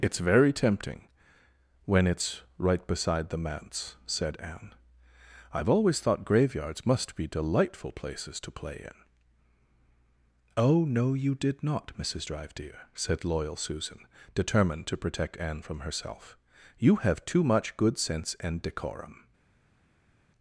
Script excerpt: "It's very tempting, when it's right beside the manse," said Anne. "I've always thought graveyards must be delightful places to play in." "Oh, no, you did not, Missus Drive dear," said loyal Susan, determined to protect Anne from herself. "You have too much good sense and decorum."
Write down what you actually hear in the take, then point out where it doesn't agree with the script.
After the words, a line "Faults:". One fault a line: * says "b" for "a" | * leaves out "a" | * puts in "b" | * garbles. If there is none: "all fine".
"It's very tempting, when it's right beside the manse," said Anne. "I've always thought graveyards must be delightful places to play in." "Oh, no, you did not, Missus Drive dear," said loyal Susan, determined to protect Anne from herself. "You have too much good sense and decorum."
Faults:
all fine